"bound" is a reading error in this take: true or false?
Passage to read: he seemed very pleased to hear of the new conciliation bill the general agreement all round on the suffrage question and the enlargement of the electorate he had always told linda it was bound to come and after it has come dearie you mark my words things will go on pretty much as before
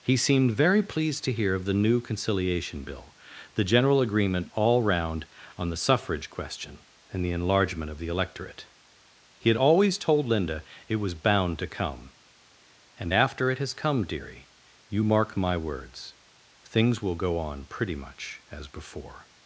false